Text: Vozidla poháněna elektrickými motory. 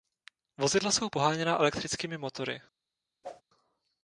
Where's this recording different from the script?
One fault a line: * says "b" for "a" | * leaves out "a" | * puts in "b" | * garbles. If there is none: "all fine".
* puts in "jsou"